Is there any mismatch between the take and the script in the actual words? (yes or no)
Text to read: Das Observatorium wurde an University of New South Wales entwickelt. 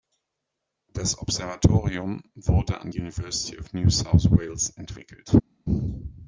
no